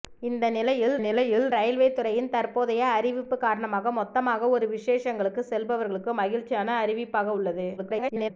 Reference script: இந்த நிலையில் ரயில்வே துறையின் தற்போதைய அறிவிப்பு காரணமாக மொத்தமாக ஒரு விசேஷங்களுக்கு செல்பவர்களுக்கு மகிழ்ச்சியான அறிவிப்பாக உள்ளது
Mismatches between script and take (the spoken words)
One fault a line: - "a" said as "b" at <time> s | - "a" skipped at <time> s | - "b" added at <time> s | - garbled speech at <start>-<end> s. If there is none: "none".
- "நிலையில்" added at 1.0 s
- garbled speech at 7.8-8.3 s